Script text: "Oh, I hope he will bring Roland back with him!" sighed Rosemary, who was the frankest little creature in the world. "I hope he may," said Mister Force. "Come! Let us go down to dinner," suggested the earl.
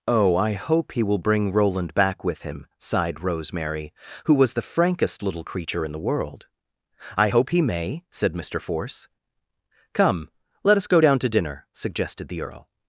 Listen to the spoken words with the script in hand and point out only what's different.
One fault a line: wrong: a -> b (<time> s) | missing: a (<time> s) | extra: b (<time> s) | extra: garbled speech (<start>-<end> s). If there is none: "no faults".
no faults